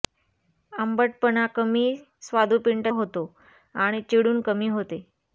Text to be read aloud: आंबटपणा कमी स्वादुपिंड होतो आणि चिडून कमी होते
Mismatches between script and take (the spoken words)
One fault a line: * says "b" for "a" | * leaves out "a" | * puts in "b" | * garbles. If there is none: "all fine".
all fine